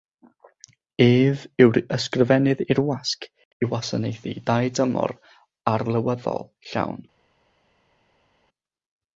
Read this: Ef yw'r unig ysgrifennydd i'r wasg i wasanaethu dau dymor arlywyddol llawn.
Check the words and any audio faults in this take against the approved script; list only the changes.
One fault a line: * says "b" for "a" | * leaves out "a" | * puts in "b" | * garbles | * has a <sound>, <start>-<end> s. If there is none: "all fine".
* leaves out "unig"